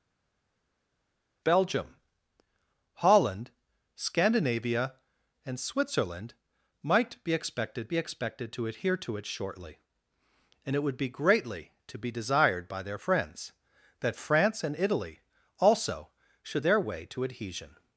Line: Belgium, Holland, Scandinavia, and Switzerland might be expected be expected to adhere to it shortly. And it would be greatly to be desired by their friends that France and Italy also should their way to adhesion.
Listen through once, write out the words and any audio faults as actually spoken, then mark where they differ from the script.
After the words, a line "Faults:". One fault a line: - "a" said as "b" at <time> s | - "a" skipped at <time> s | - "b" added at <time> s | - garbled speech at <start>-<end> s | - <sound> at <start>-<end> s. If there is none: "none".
Belgium, Holland, Scandinavia, and Switzerland might be expected be expected to adhere to it shortly. And it would be greatly to be desired by their friends that France and Italy also should their way to adhesion.
Faults:
none